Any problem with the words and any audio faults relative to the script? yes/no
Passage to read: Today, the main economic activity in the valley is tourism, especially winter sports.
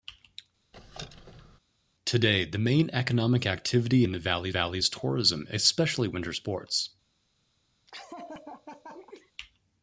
yes